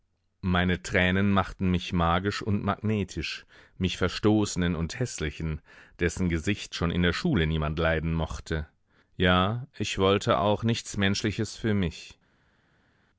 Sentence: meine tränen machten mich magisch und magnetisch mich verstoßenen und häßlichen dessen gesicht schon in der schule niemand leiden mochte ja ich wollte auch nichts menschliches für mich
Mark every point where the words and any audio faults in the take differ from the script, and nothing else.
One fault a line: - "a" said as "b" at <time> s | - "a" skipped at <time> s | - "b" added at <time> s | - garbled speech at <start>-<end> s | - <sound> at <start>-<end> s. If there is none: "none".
none